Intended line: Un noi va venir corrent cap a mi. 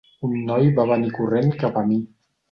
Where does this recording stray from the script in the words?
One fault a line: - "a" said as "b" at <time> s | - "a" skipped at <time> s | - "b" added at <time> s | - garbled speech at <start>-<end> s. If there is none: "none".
none